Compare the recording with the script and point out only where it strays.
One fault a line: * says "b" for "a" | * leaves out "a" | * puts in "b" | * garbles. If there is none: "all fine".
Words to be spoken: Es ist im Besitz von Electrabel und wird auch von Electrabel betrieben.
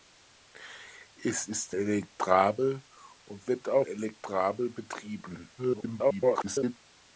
* leaves out "im Besitz von"
* leaves out "von"
* garbles